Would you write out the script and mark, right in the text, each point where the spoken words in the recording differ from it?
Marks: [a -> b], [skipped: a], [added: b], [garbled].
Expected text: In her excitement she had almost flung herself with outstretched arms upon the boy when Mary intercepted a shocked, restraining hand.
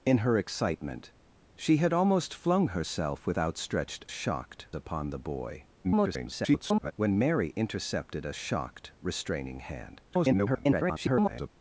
In her excitement she had almost flung herself with outstretched [arms -> shocked] upon the boy [garbled] when Mary intercepted a shocked, restraining hand. [garbled]